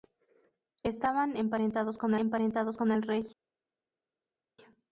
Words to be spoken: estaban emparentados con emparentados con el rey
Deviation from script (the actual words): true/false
false